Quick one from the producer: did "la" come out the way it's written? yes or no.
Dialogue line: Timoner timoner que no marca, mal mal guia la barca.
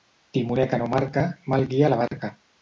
yes